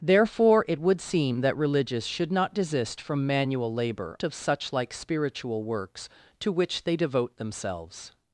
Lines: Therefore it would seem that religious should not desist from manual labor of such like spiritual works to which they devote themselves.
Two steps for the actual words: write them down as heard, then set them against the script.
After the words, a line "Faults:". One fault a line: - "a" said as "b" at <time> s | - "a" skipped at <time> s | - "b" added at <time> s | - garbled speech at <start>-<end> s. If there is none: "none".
Therefore it would seem that religious should not desist from manual labor of such like spiritual works to which they devote themselves.
Faults:
none